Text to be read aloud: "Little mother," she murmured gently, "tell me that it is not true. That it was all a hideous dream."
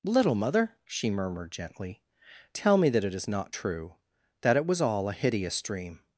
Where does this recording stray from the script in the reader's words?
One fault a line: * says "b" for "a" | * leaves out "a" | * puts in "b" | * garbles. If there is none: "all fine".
all fine